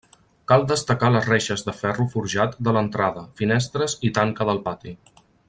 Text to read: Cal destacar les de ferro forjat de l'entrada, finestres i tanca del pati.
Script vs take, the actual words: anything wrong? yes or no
yes